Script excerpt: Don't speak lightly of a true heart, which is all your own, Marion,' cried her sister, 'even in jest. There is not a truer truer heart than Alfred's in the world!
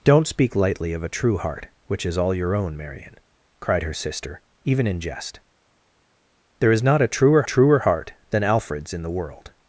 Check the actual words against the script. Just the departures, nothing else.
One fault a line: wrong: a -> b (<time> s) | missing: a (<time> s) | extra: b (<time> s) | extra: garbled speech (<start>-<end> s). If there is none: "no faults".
no faults